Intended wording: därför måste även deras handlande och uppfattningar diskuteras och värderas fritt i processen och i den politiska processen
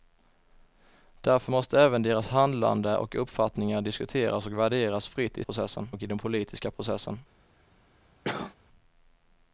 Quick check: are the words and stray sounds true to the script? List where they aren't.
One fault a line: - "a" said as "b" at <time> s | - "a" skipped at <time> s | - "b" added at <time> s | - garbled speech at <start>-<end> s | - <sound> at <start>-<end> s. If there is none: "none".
- cough at 8.2-8.5 s